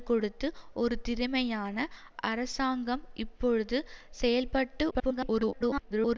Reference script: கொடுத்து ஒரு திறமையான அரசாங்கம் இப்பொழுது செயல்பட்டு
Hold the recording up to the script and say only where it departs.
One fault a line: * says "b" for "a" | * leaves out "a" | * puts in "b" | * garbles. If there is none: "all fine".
* garbles